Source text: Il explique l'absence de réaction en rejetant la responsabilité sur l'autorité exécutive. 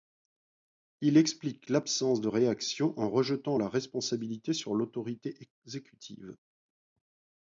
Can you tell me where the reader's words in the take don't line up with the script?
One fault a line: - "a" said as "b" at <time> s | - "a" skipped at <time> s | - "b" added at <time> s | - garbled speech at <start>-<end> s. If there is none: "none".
none